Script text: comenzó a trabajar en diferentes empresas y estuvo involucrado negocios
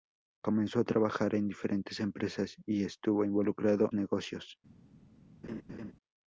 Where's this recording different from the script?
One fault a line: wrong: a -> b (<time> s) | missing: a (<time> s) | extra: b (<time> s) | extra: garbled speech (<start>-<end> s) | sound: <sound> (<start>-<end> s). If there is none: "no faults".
sound: laugh (5.4-5.9 s)